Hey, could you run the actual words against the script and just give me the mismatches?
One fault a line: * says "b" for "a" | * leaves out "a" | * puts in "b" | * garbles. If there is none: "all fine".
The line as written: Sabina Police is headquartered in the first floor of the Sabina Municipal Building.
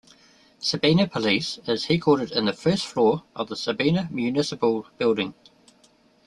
all fine